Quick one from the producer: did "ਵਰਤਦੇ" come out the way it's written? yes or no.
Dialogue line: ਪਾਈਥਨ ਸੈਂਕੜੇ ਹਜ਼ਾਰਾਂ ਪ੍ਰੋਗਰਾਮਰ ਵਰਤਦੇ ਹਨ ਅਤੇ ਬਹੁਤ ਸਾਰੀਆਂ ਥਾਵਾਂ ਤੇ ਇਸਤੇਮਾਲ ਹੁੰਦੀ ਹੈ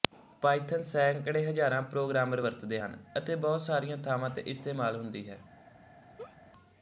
yes